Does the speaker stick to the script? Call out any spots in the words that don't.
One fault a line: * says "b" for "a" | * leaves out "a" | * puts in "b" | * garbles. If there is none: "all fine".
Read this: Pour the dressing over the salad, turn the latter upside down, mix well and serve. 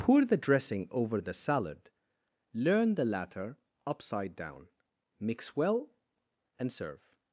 * says "learn" for "turn"